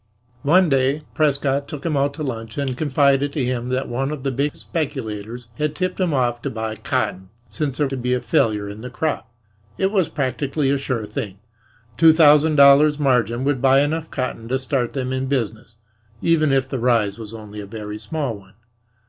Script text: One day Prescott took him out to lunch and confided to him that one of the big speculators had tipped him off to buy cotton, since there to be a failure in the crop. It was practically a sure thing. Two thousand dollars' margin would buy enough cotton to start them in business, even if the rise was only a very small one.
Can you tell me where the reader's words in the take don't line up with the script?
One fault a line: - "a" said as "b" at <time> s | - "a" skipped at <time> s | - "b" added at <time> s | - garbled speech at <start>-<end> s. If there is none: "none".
none